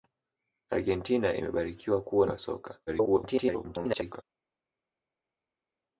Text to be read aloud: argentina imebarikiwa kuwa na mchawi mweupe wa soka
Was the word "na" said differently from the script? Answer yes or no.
yes